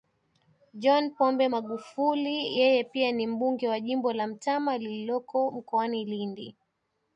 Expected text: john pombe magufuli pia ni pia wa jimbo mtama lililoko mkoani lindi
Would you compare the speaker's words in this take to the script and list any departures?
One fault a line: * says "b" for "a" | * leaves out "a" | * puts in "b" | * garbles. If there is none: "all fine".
* puts in "yeye"
* says "mbunge" for "pia"
* puts in "la"